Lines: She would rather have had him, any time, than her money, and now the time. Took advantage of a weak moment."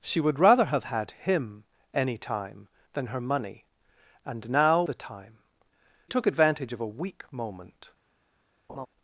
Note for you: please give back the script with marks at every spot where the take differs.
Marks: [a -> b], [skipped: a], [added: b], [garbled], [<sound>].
She would rather have had him, any time, than her money, and now the time. Took advantage of a weak moment." [laugh]